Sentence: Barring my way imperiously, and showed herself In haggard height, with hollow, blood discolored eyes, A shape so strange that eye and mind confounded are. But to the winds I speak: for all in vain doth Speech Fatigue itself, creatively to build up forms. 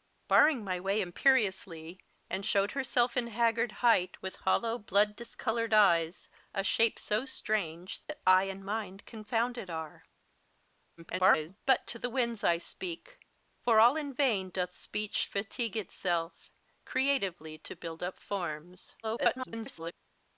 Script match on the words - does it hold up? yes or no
no